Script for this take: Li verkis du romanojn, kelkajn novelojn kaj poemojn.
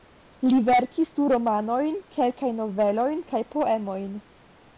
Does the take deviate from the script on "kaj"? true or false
false